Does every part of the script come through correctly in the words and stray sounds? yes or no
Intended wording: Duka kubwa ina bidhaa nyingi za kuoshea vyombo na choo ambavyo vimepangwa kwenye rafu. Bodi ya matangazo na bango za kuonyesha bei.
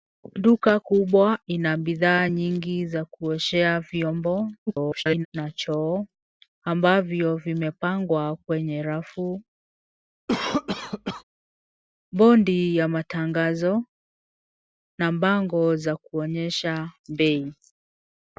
no